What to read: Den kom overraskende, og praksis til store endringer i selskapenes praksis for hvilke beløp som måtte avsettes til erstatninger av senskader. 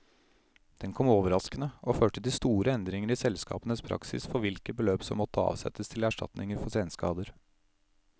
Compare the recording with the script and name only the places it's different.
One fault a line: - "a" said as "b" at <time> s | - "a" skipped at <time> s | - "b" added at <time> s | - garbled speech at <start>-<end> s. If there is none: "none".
- "praksis" said as "førte" at 1.9 s
- "av" said as "for" at 6.6 s